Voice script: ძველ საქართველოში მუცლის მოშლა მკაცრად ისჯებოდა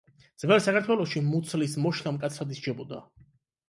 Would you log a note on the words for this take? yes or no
no